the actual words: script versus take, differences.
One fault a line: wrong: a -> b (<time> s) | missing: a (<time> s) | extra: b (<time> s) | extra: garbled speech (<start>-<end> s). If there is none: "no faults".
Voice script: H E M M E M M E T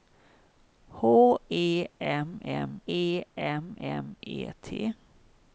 no faults